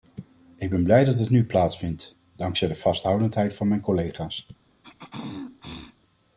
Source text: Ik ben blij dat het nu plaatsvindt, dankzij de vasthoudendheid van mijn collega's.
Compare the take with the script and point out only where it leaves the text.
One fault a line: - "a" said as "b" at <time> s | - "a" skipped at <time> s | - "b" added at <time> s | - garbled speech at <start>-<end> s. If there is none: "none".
none